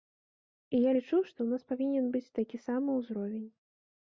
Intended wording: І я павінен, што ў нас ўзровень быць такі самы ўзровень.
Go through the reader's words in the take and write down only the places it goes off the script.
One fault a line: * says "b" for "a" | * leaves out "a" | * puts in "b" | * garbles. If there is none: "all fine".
* says "лічу" for "павінен"
* says "павінен" for "ўзровень"